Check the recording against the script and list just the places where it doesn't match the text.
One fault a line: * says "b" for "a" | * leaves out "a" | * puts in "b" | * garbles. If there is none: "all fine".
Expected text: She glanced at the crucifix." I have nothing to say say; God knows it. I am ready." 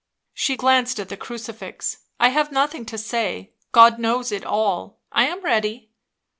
* leaves out "say"
* puts in "all"